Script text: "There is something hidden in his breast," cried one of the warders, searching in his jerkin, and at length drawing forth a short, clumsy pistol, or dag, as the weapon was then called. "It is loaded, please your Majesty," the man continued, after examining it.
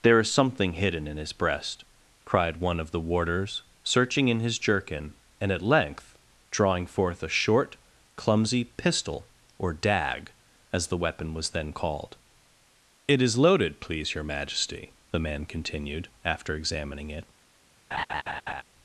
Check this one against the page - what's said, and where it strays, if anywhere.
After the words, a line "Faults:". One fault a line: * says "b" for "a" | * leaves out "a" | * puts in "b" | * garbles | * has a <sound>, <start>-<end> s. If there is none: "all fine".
"There is something hidden in his breast," cried one of the warders, searching in his jerkin, and at length drawing forth a short, clumsy pistol, or dag, as the weapon was then called. "It is loaded, please your Majesty," the man continued, after examining it.
Faults:
* has a laugh, 17.9-18.6 s